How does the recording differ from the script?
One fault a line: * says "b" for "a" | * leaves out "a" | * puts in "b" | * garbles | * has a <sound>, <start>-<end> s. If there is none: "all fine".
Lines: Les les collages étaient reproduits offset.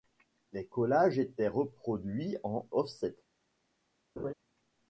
* leaves out "les"
* puts in "en"
* has a laugh, 4.2-4.3 s